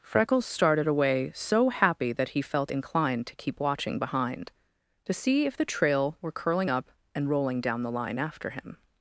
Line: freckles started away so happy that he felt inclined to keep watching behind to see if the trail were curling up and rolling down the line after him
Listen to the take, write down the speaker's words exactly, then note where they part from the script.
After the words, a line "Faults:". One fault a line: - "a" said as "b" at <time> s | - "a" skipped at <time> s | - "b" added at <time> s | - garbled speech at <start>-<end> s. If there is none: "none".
freckles started away so happy that he felt inclined to keep watching behind to see if the trail were curling up and rolling down the line after him
Faults:
none